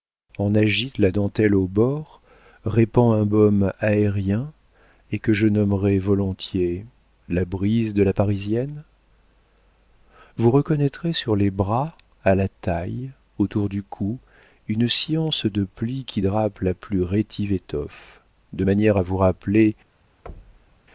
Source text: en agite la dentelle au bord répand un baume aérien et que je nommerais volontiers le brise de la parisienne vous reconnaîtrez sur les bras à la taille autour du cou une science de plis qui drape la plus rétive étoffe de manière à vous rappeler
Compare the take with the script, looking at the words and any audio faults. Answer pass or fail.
fail